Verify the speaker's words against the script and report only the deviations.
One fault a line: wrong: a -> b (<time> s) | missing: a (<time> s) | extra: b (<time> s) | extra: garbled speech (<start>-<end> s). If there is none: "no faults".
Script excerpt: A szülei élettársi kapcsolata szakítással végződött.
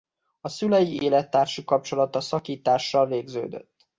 no faults